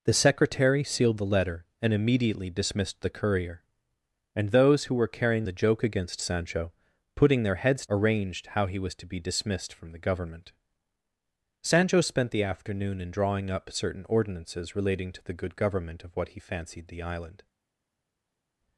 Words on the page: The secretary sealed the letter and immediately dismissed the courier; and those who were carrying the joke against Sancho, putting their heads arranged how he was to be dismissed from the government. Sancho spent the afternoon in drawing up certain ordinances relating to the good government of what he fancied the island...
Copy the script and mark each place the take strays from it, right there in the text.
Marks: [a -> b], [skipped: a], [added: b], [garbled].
The secretary sealed the letter and immediately dismissed the courier; and those who were carrying the joke against Sancho, putting their heads arranged how he was to be dismissed from the government. Sancho spent the afternoon in drawing up certain ordinances relating to the good government of what he fancied the island...